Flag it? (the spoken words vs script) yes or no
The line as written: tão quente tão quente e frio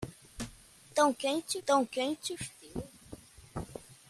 no